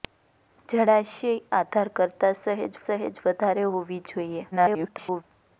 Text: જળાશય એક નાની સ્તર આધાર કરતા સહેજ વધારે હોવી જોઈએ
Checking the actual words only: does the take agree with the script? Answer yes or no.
no